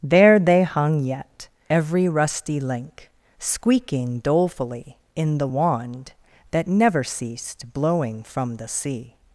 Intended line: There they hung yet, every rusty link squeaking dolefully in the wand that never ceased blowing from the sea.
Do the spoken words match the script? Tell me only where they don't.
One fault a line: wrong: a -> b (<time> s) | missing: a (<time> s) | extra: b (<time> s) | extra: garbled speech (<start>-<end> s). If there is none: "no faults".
no faults